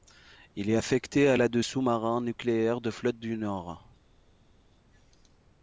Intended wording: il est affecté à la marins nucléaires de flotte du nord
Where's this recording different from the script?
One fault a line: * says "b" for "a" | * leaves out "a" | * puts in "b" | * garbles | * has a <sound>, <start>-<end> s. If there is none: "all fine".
* puts in "de sous"